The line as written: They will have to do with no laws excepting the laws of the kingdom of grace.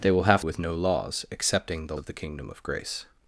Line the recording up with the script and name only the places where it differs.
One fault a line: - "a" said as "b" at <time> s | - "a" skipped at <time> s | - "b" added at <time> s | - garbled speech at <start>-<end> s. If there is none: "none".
- "to do" skipped at 0.4 s
- "laws" skipped at 2.0 s